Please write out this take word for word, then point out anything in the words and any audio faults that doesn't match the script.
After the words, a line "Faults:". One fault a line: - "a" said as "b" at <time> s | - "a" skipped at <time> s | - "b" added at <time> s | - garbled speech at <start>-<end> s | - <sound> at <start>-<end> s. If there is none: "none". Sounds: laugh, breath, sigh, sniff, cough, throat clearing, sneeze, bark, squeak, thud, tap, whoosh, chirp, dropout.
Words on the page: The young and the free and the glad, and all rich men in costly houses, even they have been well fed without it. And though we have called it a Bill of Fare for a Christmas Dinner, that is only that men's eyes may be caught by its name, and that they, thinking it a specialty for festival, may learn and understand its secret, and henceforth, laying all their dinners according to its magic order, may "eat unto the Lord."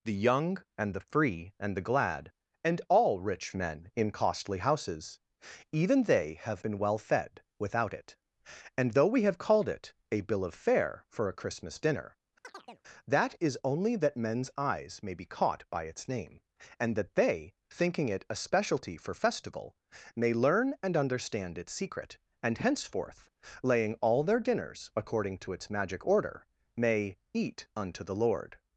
The young and the free and the glad, and all rich men in costly houses, even they have been well fed without it. And though we have called it a Bill of Fare for a Christmas Dinner, that is only that men's eyes may be caught by its name, and that they, thinking it a specialty for festival, may learn and understand its secret, and henceforth, laying all their dinners according to its magic order, may "eat unto the Lord."
Faults:
- chirp at 12.4-12.8 s